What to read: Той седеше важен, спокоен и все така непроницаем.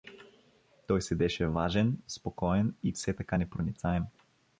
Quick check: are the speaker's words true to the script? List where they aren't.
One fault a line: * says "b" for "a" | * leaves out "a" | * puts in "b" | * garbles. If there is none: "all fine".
all fine